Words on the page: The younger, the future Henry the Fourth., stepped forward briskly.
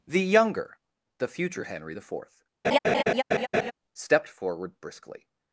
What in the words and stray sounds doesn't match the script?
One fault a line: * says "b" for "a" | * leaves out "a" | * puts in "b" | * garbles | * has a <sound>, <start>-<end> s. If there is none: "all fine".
* has a laugh, 2.6-3.7 s